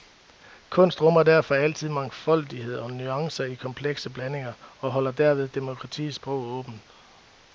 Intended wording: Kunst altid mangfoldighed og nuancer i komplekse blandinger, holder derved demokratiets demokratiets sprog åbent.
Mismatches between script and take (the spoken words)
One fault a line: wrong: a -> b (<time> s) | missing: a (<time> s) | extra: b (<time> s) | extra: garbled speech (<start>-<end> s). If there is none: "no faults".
extra: rummer derfor (1.0 s)
extra: og (4.8 s)
missing: demokratiets (6.2 s)